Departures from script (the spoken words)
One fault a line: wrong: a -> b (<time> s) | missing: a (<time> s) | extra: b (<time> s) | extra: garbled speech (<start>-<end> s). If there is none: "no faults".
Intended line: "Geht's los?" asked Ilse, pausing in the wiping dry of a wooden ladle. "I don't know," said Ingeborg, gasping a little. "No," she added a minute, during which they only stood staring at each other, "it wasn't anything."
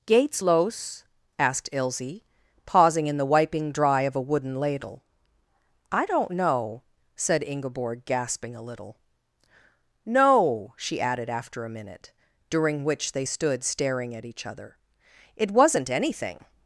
extra: after (11.3 s)
missing: only (13.2 s)